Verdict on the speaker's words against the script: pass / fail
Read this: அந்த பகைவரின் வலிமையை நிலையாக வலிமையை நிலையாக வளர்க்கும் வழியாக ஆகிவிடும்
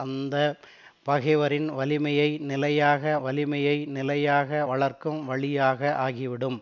pass